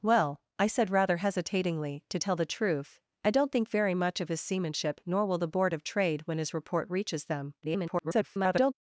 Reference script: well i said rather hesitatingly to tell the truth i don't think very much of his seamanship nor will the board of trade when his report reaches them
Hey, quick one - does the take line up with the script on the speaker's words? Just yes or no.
no